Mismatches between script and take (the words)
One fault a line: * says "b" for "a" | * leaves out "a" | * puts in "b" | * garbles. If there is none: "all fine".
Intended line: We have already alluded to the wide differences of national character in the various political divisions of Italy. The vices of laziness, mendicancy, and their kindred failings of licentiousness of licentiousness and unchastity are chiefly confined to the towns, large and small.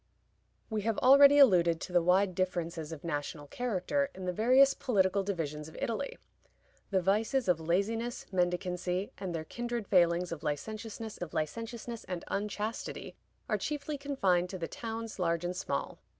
all fine